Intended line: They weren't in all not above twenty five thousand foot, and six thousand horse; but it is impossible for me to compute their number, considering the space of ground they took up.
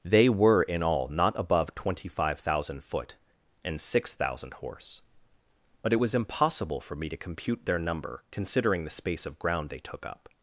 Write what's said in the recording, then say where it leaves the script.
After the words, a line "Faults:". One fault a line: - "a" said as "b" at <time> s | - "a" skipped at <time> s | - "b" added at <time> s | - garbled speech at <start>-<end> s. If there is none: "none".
They were in all not above twenty five thousand foot, and six thousand horse; but it was impossible for me to compute their number, considering the space of ground they took up.
Faults:
- "weren't" said as "were" at 0.3 s
- "is" said as "was" at 6.0 s